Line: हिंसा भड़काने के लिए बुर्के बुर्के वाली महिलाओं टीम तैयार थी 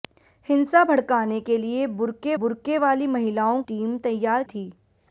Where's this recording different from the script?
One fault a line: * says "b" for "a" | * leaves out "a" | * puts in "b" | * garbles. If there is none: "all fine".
all fine